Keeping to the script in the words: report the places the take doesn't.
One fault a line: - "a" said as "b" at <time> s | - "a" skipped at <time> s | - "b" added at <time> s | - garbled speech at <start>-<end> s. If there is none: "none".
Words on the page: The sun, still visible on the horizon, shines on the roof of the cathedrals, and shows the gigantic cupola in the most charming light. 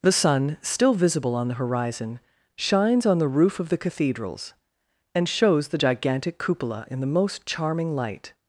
none